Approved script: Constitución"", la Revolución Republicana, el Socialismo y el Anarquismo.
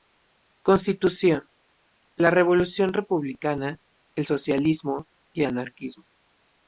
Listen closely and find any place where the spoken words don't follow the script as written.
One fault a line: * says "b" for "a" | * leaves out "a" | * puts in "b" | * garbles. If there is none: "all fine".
* leaves out "el"